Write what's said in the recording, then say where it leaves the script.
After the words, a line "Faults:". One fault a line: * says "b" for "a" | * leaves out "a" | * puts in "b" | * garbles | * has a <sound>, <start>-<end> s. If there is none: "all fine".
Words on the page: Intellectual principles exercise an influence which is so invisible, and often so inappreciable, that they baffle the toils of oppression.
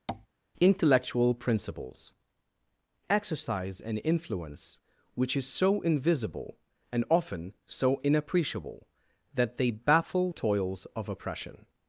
Intellectual principles exercise an influence which is so invisible, and often so inappreciable, that they baffle toils of oppression.
Faults:
* has a tap, 0.1-0.3 s
* leaves out "the"